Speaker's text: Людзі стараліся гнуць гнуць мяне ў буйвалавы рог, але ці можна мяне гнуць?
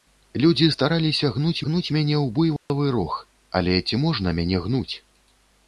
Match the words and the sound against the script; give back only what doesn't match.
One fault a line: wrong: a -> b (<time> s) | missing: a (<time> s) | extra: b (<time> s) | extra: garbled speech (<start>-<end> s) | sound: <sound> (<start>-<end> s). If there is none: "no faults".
sound: dropout (2.6-2.7 s)